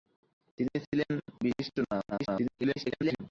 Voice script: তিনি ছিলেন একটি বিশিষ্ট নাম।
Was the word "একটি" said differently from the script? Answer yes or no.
yes